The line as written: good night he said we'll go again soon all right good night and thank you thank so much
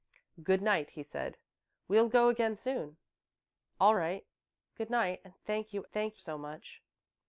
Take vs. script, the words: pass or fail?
pass